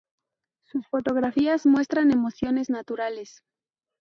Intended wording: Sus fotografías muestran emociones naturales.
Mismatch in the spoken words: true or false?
false